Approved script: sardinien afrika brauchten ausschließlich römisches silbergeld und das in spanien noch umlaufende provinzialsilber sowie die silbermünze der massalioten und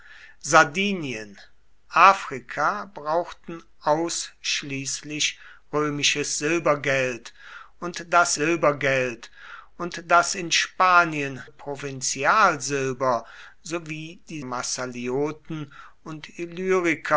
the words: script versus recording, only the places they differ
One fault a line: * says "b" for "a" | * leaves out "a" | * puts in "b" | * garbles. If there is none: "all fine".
* puts in "silbergeld und das"
* leaves out "noch umlaufende"
* leaves out "silbermünze der"